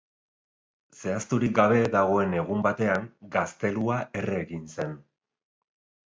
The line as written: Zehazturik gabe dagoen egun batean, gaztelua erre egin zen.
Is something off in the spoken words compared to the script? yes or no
no